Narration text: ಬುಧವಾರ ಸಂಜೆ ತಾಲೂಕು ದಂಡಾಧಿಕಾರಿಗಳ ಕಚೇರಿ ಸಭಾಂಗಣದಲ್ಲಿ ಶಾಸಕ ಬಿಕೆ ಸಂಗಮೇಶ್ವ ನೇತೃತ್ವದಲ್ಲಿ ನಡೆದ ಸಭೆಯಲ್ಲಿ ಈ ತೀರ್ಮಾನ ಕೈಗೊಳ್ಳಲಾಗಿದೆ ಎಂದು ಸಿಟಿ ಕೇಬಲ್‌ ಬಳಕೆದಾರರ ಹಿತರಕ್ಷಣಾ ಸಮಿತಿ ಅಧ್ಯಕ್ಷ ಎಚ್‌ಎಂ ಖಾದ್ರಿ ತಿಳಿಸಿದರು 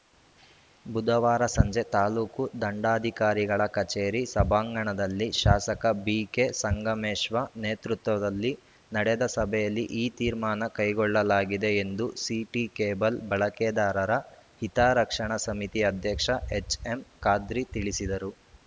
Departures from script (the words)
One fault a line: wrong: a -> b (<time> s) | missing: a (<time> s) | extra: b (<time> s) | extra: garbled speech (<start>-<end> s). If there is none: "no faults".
no faults